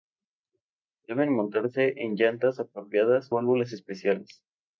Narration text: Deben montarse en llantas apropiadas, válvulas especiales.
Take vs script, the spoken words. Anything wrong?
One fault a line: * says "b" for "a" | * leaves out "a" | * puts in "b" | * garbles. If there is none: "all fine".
all fine